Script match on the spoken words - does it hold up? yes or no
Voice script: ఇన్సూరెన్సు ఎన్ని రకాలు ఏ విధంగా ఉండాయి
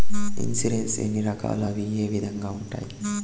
no